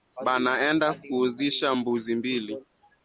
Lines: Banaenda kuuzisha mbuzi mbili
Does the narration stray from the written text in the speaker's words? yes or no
no